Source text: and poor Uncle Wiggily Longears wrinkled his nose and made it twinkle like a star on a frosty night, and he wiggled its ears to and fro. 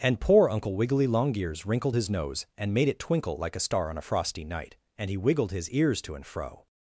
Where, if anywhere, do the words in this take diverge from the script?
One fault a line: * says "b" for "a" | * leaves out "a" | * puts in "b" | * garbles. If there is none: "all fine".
* says "his" for "its"